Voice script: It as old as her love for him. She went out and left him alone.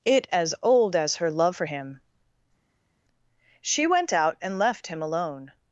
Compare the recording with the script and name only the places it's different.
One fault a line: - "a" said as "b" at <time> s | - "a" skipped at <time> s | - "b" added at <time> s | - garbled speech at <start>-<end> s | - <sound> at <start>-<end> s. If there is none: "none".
none